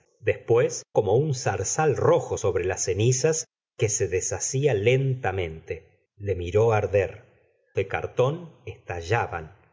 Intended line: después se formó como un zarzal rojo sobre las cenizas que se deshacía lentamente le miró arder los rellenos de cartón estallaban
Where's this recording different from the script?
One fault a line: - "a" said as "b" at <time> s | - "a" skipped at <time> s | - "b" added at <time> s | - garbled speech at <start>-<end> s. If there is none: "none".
- "se formó" skipped at 0.8 s
- "los rellenos" skipped at 7.3 s